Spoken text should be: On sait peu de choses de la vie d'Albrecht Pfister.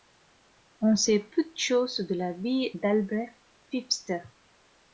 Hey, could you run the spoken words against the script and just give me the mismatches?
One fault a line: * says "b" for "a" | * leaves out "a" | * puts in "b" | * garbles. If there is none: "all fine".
all fine